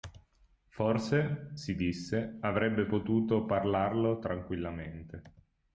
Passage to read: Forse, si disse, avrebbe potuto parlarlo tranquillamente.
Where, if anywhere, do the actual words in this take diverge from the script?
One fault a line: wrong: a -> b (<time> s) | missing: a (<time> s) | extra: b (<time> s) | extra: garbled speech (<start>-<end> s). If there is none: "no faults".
no faults